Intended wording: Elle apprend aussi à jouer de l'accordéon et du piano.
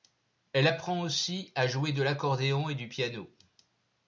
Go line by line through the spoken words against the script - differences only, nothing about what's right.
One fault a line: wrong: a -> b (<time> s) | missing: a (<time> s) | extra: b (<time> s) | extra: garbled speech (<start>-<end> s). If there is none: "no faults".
no faults